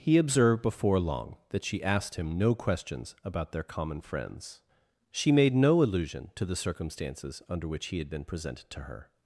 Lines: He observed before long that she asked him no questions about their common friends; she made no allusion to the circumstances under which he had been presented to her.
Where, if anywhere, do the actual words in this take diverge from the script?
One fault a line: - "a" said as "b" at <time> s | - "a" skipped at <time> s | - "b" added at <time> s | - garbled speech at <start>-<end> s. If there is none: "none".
none